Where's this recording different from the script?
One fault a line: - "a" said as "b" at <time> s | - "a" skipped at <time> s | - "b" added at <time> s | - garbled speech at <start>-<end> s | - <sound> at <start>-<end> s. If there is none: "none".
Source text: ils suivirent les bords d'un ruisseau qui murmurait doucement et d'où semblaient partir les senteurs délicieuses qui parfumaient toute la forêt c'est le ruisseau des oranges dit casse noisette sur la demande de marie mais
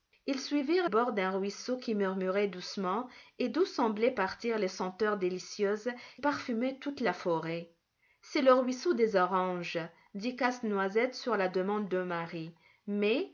- "les" skipped at 0.9 s
- "qui" skipped at 5.9 s